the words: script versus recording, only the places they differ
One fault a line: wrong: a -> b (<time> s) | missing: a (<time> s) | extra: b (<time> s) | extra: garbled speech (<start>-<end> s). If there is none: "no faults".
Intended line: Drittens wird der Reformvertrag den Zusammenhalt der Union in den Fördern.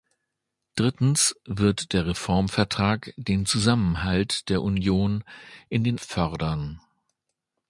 no faults